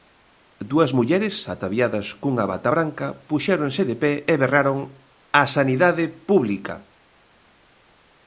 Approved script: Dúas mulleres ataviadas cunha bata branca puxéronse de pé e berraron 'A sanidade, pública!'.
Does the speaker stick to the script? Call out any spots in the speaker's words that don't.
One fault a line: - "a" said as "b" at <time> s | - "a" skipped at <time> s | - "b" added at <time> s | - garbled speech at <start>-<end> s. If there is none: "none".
none